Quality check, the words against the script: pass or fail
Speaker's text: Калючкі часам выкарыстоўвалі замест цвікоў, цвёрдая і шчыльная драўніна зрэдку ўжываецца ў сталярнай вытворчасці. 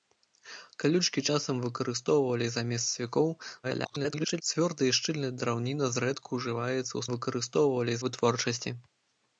fail